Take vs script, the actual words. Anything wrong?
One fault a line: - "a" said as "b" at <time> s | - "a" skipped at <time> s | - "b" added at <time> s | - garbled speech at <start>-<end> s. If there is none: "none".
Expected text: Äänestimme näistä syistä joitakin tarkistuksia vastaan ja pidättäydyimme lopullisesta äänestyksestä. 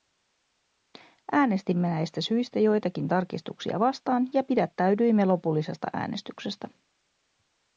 none